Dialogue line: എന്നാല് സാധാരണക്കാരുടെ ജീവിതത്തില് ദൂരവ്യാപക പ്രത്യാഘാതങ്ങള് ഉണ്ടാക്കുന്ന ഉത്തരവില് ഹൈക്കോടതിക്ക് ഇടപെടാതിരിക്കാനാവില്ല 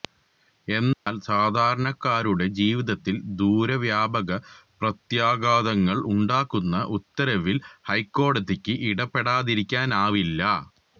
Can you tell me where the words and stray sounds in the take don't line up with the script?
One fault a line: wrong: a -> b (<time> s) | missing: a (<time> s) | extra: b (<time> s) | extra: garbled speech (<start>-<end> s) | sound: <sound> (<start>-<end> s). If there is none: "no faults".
sound: dropout (0.9-1.1 s)